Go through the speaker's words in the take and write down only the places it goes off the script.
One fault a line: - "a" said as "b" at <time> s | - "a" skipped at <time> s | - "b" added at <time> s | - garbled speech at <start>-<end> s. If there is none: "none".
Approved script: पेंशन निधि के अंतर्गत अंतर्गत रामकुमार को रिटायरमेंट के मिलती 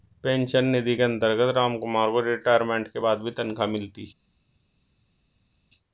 - "अंतर्गत" skipped at 1.5 s
- "बाद भी तनख्वाह" added at 3.0 s